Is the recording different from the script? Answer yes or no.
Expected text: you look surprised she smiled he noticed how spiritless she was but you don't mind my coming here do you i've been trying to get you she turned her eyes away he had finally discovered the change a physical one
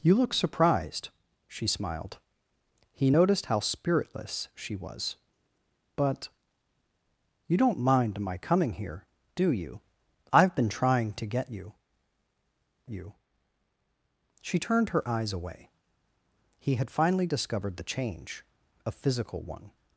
yes